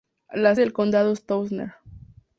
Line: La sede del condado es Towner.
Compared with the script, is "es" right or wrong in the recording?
right